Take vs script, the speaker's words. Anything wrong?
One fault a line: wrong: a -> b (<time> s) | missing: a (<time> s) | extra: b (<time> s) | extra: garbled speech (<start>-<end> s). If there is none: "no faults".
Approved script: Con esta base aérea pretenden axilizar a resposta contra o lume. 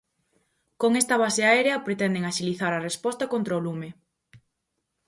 no faults